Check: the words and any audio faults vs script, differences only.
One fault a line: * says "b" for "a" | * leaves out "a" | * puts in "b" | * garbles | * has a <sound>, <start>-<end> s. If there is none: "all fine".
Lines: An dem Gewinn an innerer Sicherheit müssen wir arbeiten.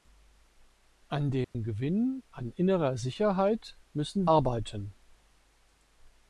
* has a dropout, 1.4-1.5 s
* leaves out "wir"